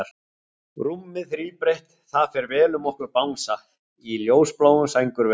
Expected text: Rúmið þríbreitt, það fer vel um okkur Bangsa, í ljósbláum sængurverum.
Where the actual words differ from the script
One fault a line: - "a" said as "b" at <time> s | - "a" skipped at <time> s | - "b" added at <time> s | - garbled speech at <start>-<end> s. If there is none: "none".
none